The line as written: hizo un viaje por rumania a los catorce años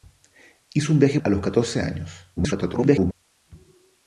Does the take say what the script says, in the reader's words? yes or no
no